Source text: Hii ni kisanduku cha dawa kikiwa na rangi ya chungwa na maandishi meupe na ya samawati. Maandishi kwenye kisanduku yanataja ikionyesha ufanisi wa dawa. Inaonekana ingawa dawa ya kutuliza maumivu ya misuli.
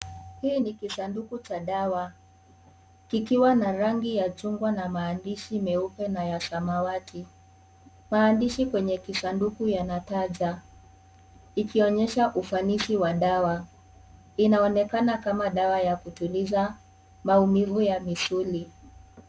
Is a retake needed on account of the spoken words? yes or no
yes